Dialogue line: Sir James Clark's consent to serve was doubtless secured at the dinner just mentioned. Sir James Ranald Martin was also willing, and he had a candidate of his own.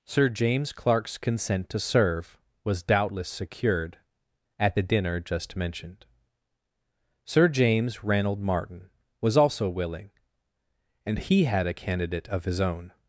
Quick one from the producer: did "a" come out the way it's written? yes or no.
yes